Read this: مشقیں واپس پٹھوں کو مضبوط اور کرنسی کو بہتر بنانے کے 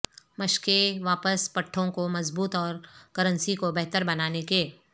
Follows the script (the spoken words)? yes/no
yes